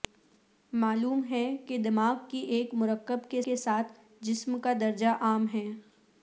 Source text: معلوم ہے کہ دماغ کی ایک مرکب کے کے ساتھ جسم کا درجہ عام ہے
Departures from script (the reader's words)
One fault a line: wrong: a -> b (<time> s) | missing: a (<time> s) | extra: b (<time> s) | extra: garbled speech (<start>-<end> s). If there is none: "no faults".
no faults